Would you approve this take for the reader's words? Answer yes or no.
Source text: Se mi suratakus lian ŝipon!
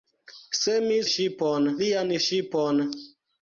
no